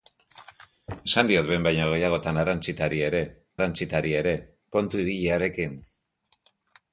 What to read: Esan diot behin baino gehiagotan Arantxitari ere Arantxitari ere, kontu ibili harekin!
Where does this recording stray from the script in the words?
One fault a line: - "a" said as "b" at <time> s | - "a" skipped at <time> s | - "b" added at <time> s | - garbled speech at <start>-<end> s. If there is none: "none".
none